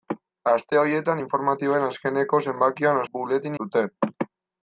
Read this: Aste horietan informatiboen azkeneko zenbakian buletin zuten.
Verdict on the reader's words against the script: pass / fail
pass